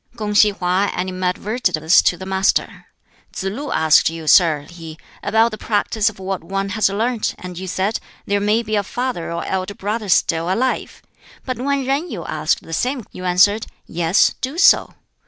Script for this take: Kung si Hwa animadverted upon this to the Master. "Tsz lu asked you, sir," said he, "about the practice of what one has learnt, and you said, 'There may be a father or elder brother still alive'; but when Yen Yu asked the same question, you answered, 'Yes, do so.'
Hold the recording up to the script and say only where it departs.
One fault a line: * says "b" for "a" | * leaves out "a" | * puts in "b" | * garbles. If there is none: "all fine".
* leaves out "upon"
* leaves out "said"
* leaves out "question"